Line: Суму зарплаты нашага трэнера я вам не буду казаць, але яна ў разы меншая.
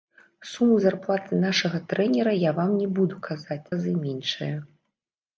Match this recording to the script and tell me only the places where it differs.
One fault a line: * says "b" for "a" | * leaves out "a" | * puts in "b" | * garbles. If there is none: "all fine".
* leaves out "але яна ў"